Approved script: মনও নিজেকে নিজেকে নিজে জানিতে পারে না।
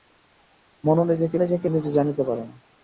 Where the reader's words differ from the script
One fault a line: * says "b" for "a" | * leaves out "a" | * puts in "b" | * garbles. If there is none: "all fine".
all fine